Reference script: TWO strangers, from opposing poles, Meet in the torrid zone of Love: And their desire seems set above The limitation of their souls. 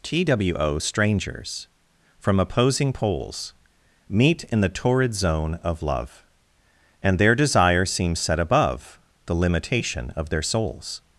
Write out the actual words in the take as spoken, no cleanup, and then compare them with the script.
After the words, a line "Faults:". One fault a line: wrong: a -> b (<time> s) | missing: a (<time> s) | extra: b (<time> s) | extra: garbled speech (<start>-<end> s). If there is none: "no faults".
TWO strangers, from opposing poles, Meet in the torrid zone of Love: And their desire seems set above The limitation of their souls.
Faults:
no faults